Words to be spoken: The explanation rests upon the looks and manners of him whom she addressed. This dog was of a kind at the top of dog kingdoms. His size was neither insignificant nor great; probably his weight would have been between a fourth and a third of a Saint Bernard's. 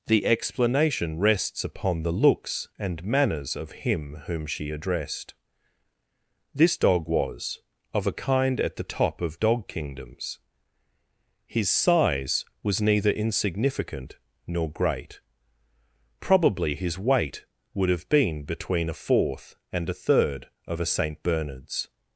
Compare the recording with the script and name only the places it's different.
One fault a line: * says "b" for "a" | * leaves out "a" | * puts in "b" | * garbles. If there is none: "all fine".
all fine